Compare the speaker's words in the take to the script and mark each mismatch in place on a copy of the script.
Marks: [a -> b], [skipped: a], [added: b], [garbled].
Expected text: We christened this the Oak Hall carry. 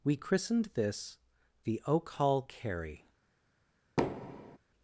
We christened this the Oak Hall carry.